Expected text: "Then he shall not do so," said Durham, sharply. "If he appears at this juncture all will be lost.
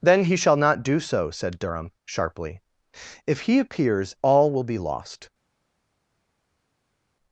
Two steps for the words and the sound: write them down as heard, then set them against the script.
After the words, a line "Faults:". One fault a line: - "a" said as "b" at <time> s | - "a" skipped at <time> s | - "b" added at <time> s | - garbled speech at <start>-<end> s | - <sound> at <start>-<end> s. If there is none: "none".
"Then he shall not do so," said Durham, sharply. "If he appears all will be lost.
Faults:
- "at this juncture" skipped at 4.2 s